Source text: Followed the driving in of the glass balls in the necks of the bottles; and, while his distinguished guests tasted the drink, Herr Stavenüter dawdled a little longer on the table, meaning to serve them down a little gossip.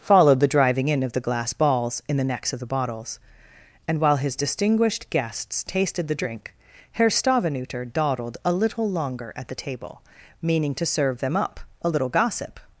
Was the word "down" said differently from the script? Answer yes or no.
yes